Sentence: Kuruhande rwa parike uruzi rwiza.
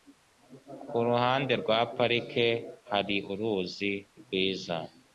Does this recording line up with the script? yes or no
no